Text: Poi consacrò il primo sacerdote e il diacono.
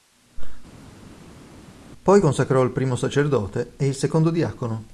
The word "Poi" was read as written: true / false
true